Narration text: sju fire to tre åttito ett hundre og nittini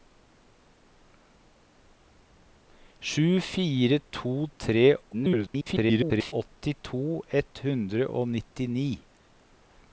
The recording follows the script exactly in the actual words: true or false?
false